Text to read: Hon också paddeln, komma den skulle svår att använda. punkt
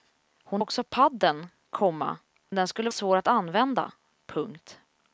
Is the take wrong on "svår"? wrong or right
right